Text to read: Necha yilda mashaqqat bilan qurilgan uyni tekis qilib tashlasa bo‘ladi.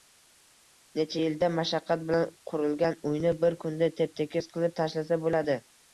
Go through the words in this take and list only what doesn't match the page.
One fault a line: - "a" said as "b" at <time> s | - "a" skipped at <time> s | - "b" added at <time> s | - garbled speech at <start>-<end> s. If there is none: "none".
- "bir kunda tep" added at 3.5 s